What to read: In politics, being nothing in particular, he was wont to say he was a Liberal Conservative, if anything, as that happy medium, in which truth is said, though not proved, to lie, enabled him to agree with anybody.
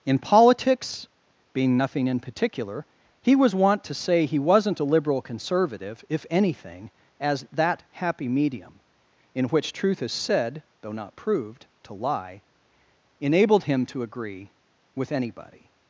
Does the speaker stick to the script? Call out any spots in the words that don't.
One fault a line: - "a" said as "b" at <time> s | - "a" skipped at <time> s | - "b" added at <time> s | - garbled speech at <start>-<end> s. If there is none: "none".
- "was" said as "wasn't" at 4.4 s